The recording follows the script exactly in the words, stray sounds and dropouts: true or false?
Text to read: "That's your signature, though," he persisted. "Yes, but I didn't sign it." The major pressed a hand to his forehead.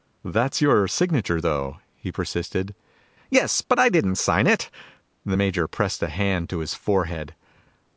true